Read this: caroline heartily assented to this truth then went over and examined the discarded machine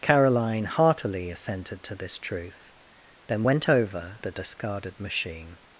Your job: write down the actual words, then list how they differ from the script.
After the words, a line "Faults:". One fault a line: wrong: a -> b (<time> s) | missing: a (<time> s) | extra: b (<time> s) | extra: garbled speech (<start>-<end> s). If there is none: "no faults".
caroline heartily assented to this truth then went over the discarded machine
Faults:
missing: and examined (4.2 s)